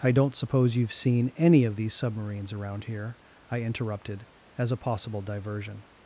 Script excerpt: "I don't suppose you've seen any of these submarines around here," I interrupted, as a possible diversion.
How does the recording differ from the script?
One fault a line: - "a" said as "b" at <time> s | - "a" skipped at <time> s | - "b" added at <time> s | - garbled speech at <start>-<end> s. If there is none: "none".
none